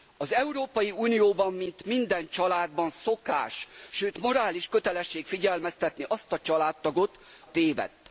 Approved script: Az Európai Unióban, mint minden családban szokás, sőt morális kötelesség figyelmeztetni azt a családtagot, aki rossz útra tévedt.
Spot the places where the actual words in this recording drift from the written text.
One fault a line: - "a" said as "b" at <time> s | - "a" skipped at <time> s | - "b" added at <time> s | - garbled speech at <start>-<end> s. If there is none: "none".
- "aki rossz útra" skipped at 7.2 s